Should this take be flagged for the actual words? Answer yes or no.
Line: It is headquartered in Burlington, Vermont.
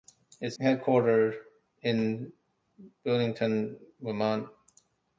yes